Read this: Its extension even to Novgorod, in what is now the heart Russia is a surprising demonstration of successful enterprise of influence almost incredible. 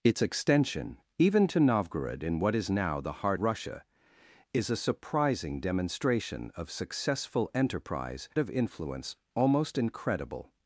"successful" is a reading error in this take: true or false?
false